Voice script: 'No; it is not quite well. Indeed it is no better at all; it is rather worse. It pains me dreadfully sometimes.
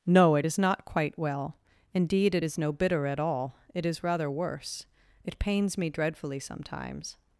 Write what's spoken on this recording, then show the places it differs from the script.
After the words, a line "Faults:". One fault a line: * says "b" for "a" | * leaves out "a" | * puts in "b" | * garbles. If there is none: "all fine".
'No; it is not quite well. Indeed it is no bitter at all; it is rather worse. It pains me dreadfully sometimes.
Faults:
* says "bitter" for "better"